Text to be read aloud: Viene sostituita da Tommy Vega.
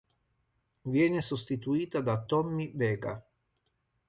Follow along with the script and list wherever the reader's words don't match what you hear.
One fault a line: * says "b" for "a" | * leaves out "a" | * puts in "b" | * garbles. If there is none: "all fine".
all fine